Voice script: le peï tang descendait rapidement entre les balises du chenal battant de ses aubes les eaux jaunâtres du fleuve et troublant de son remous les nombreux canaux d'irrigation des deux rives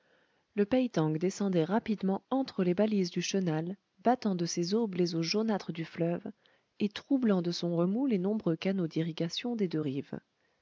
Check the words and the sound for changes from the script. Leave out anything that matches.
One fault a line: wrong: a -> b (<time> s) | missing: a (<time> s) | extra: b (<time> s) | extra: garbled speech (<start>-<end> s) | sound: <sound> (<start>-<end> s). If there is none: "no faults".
no faults